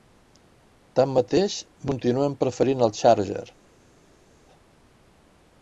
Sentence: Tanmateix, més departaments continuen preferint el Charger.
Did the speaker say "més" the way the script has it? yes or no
no